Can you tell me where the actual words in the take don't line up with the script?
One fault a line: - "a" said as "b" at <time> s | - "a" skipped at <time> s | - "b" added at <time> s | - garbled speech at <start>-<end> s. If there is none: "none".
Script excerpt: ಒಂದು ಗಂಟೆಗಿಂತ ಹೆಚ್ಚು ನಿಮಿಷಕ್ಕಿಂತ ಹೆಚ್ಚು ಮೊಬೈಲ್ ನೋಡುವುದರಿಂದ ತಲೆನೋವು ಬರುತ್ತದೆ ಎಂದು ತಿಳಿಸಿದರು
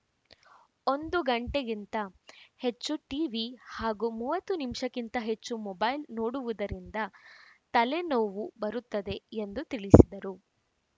- "ಟಿವಿ ಹಾಗೂ ಮೂವತ್ತು" added at 3.0 s